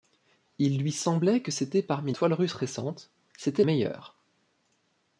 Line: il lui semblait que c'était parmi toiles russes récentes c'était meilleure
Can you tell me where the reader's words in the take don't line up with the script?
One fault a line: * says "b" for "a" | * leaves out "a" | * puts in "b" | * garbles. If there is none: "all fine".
all fine